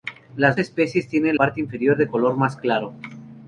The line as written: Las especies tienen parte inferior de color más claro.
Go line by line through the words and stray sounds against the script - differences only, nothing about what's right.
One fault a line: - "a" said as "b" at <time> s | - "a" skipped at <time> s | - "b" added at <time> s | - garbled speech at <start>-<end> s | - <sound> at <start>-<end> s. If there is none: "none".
none